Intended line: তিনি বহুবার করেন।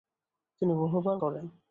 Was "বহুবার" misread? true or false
false